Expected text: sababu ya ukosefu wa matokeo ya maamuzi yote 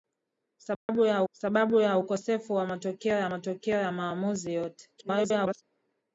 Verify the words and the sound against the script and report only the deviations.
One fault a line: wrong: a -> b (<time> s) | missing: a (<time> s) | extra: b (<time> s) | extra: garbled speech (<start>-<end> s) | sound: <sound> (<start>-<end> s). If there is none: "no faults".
sound: dropout (0.7-0.9 s)
extra: sababu ya (1.3 s)
extra: matokeo ya (3.3 s)
extra: garbled speech (5.0-5.6 s)